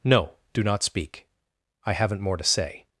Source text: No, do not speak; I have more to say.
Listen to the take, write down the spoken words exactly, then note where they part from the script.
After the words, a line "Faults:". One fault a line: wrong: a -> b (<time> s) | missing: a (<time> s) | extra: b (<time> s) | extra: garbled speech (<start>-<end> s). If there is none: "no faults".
No, do not speak; I haven't more to say.
Faults:
wrong: have -> haven't (1.9 s)